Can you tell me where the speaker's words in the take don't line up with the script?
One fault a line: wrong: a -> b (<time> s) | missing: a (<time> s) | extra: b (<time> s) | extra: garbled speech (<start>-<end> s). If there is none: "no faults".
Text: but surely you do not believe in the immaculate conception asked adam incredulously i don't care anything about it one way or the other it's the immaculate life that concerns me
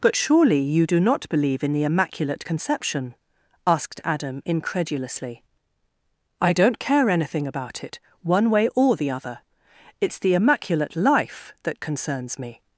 no faults